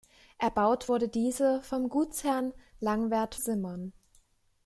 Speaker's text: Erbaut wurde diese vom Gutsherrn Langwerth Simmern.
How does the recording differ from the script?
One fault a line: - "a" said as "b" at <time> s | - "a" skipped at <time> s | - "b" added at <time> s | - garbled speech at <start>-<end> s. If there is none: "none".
none